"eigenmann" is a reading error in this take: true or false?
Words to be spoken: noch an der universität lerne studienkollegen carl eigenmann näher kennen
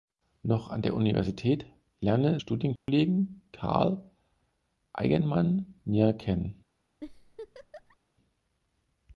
false